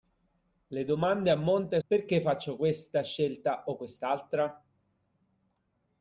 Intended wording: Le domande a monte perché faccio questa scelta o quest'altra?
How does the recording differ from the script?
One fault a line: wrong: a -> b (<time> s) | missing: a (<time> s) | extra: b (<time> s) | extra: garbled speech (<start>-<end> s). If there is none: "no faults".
no faults